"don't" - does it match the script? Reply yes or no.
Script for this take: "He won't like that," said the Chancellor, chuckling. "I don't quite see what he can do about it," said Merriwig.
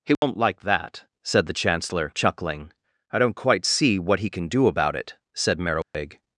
yes